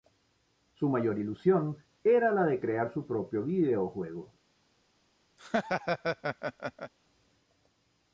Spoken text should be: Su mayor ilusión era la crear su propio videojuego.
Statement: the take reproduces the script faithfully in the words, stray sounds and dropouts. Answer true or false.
false